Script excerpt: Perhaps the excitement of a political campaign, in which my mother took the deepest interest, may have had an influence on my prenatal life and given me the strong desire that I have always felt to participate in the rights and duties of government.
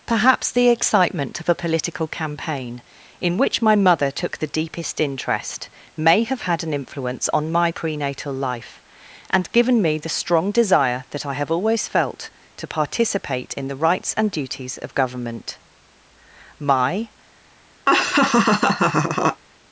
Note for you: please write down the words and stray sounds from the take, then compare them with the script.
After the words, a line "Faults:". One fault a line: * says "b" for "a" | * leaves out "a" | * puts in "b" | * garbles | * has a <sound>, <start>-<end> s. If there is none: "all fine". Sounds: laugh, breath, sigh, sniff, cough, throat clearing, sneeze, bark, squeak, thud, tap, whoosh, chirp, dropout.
Perhaps the excitement of a political campaign, in which my mother took the deepest interest, may have had an influence on my prenatal life and given me the strong desire that I have always felt to participate in the rights and duties of government. My
Faults:
* puts in "My"
* has a laugh, 17.9-19.4 s